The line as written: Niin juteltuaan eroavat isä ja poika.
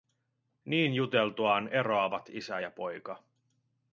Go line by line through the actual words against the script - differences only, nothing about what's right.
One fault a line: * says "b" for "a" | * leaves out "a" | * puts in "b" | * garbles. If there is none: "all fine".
all fine